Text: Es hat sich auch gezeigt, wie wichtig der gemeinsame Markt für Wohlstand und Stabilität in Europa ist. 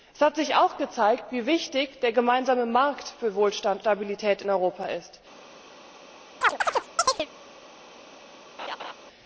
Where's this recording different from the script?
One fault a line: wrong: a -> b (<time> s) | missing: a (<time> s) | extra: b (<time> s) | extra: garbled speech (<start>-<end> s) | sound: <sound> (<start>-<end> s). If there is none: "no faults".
missing: und (3.8 s)
sound: chirp (6.4-7.3 s)
sound: laugh (8.6-8.9 s)